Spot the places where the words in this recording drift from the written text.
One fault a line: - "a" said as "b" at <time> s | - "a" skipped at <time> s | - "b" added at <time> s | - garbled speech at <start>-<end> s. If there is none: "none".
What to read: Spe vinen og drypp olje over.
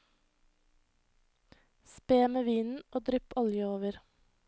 - "med" added at 2.3 s